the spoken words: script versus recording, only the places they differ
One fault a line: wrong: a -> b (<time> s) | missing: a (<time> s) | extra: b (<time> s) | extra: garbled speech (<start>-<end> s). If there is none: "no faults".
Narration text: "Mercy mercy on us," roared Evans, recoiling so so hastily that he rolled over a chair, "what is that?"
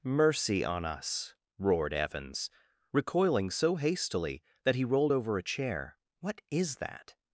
missing: mercy (0.7 s)
missing: so (3.7 s)